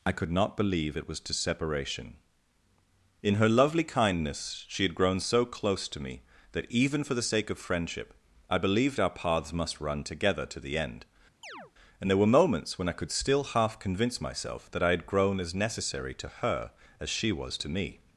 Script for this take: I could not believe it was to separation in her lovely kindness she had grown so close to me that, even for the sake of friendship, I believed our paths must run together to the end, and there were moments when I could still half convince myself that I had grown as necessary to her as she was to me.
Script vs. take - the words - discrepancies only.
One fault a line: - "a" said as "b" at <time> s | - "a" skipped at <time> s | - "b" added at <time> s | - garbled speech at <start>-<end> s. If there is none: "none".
none